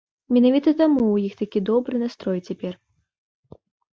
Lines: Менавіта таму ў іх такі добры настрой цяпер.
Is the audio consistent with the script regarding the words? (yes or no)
yes